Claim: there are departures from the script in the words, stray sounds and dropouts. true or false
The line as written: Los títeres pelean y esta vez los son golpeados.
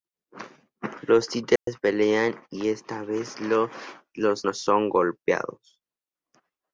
true